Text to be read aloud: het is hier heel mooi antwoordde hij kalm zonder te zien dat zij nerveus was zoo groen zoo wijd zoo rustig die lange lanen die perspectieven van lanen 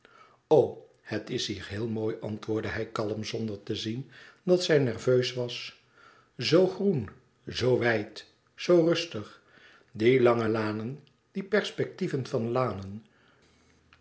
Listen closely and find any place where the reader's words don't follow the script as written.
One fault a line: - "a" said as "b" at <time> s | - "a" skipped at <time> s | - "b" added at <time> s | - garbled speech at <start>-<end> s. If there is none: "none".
none